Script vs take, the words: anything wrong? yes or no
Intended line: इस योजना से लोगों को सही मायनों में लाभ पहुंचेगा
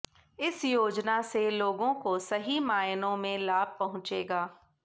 no